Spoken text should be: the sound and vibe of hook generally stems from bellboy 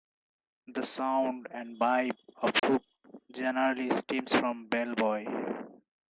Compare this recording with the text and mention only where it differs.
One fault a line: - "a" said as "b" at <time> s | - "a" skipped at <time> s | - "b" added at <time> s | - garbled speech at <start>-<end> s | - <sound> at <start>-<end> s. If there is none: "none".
- dropout at 2.6-2.6 s